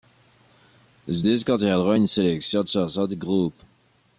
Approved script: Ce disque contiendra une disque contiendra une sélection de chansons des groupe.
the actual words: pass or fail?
fail